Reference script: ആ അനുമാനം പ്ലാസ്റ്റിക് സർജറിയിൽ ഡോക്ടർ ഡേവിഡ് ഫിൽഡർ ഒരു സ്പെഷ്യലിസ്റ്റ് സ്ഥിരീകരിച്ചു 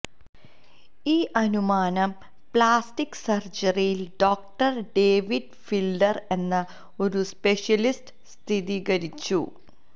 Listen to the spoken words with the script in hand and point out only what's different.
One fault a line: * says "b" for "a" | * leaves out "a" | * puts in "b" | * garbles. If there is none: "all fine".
* says "ഈ" for "ആ"
* puts in "എന്ന"